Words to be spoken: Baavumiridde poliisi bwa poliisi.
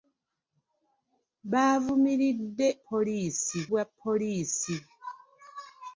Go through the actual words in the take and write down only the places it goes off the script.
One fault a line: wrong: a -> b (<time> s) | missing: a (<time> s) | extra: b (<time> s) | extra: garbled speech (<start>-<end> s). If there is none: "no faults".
no faults